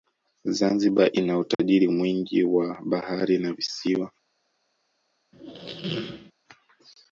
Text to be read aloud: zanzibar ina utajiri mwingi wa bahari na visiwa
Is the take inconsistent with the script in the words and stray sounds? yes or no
yes